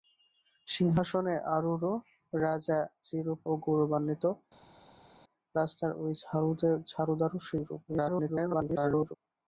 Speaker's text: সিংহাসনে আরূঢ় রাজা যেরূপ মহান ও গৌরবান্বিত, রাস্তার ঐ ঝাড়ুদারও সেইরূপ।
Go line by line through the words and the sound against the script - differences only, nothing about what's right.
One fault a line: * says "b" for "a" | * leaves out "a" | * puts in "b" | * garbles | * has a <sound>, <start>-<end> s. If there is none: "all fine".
* leaves out "মহান"
* garbles